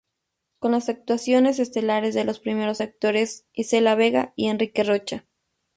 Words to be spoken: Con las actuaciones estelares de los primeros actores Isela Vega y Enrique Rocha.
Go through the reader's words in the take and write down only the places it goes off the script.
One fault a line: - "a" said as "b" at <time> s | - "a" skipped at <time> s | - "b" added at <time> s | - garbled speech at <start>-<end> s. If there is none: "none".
none